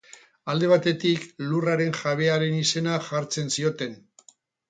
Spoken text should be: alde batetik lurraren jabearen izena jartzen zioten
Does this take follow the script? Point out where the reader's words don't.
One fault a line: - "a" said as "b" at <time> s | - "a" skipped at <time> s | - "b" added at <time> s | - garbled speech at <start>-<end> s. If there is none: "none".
none